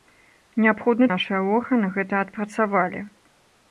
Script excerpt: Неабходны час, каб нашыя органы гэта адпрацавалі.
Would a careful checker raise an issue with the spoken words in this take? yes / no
yes